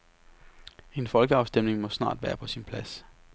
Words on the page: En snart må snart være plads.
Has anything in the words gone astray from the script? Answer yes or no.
yes